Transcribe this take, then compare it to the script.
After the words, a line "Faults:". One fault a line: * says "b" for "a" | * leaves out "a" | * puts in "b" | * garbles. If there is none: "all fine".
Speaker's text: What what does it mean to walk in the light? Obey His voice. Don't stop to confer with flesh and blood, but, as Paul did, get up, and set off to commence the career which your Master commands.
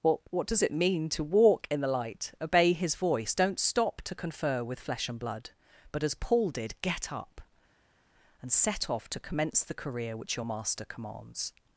What what does it mean to walk in the light? Obey His voice. Don't stop to confer with flesh and blood, but, as Paul did, get up, and set off to commence the career which your Master commands.
Faults:
all fine